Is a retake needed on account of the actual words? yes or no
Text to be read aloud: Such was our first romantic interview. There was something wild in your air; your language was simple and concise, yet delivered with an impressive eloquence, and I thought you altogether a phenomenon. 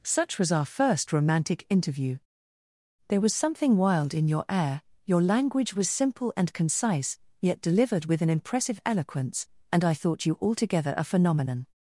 no